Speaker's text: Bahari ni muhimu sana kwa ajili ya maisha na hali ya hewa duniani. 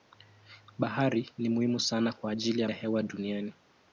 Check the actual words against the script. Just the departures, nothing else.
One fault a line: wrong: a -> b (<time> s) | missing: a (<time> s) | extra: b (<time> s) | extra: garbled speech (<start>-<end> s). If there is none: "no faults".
missing: maisha na hali (2.7 s)